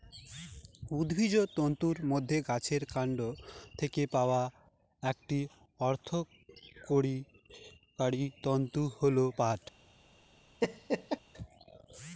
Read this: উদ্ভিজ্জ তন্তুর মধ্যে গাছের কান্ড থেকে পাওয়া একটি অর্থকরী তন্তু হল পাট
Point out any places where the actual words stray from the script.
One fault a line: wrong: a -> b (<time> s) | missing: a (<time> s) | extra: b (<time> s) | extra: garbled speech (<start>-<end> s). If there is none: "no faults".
no faults